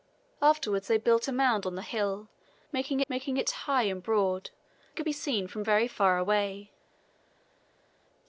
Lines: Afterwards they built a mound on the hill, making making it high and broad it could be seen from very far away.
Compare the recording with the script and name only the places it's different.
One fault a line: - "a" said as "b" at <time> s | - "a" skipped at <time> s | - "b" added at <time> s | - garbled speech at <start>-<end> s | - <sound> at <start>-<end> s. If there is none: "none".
none